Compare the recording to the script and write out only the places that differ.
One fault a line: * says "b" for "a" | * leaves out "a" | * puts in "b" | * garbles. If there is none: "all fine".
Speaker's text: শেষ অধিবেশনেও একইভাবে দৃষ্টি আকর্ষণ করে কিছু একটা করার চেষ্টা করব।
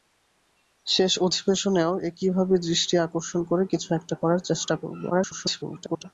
* garbles